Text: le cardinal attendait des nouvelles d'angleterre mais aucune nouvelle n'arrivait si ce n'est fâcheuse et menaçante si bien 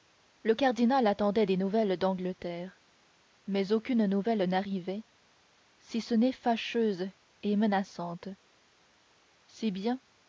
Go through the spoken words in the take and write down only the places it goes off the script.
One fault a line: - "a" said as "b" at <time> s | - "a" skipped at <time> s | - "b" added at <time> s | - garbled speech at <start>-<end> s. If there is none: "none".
none